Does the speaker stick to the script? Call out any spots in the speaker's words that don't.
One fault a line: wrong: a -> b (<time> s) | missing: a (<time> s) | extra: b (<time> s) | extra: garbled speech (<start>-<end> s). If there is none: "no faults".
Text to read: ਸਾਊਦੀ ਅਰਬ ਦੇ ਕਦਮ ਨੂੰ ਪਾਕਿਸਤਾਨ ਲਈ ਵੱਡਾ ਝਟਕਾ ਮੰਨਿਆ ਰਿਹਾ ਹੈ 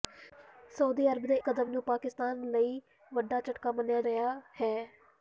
no faults